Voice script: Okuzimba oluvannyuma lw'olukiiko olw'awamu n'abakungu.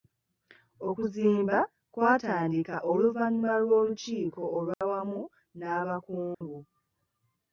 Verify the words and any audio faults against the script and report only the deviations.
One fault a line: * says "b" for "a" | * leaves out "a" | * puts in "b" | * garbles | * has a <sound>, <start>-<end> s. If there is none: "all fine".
* puts in "kwatandika"
* has a dropout, 4.7-4.8 s
* has a dropout, 6.3-6.4 s